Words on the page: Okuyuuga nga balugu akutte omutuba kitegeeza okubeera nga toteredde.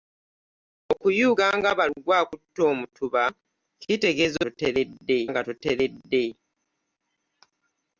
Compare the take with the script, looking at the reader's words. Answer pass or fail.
fail